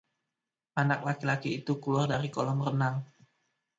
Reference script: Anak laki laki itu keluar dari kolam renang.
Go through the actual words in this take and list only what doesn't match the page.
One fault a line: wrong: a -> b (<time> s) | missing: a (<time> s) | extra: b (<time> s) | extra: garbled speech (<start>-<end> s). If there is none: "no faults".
no faults